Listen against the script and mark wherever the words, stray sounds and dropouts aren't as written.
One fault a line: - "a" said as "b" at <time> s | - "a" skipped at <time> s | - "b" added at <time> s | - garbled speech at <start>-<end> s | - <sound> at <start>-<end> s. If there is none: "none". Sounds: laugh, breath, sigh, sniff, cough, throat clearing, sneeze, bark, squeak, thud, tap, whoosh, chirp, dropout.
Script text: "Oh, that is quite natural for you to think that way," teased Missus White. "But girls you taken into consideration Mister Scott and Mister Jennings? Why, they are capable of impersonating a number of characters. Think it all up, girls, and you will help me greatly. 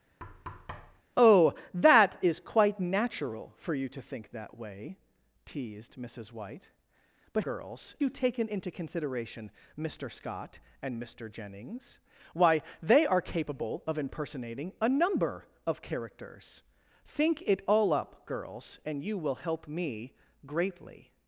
- thud at 0.2-1.0 s